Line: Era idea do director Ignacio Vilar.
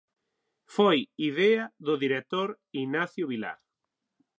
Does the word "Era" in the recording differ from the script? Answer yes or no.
yes